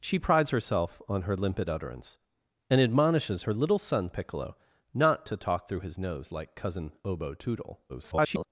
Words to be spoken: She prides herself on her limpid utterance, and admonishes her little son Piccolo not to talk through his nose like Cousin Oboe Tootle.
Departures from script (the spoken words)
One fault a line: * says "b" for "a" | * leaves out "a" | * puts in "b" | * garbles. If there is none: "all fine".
* garbles